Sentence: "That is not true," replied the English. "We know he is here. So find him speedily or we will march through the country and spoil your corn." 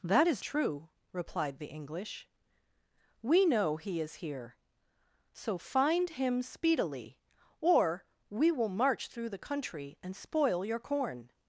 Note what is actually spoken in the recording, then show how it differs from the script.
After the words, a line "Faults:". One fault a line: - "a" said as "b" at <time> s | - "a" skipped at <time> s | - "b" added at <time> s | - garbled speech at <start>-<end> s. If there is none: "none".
"That is true," replied the English. "We know he is here. So find him speedily or we will march through the country and spoil your corn."
Faults:
- "not" skipped at 0.4 s